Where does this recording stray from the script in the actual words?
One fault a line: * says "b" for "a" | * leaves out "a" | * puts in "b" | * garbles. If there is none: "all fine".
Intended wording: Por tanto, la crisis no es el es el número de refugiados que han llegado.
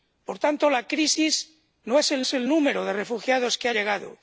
all fine